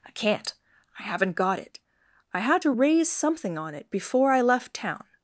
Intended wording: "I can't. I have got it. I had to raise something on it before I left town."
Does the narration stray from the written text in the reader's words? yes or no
yes